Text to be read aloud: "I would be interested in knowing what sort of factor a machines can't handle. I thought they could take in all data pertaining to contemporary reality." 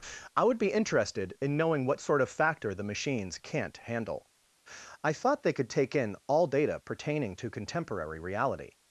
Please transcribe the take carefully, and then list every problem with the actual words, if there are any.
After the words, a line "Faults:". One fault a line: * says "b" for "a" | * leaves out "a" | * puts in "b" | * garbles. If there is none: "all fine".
"I would be interested in knowing what sort of factor the machines can't handle. I thought they could take in all data pertaining to contemporary reality."
Faults:
* says "the" for "a"